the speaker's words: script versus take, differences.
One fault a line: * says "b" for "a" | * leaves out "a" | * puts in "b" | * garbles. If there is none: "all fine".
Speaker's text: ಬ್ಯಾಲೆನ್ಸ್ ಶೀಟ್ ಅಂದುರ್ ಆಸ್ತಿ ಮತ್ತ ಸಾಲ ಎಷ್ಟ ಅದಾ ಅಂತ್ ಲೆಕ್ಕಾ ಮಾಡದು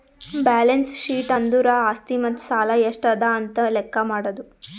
all fine